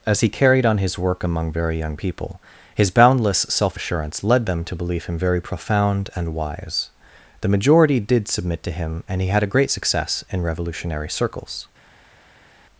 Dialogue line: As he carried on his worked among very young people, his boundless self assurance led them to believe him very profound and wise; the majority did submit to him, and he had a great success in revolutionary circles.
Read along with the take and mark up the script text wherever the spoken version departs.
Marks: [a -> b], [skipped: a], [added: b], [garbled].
As he carried on his [worked -> work] among very young people, his boundless self assurance led them to believe him very profound and wise; the majority did submit to him, and he had a great success in revolutionary circles.